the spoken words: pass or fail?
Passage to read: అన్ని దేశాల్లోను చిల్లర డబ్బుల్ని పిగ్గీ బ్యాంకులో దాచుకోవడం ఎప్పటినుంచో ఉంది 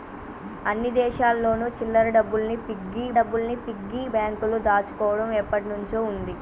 fail